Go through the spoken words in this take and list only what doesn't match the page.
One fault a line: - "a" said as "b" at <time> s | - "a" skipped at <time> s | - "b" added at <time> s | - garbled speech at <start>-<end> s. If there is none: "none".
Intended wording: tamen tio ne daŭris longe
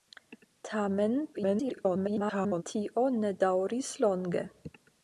- garbled speech at 1.3-2.6 s